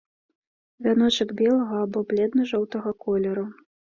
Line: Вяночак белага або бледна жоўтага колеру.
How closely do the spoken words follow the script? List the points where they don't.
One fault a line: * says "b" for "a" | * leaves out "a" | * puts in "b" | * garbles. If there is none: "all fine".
all fine